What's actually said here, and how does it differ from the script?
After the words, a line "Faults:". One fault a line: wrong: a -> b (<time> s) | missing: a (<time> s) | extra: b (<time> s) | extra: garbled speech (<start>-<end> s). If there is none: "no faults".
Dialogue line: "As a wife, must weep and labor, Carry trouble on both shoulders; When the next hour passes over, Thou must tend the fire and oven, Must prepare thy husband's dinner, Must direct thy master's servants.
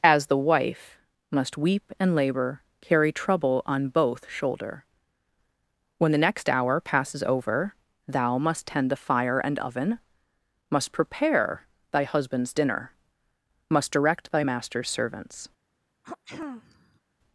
"As the wife, must weep and labor, Carry trouble on both shoulder; When the next hour passes over, Thou must tend the fire and oven, Must prepare thy husband's dinner, Must direct thy master's servants.
Faults:
wrong: a -> the (0.3 s)
wrong: shoulders -> shoulder (4.3 s)